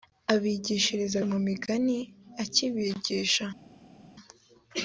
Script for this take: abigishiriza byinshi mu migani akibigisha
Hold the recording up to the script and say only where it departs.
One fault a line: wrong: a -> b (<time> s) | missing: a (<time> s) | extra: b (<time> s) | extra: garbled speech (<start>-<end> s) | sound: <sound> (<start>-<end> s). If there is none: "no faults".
missing: byinshi (1.2 s)